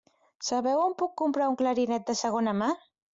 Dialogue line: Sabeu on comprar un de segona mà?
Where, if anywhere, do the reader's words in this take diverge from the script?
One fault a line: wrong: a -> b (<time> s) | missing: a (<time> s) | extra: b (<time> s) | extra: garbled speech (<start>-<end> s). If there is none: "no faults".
extra: puc (1.0 s)
extra: clarinet (1.6 s)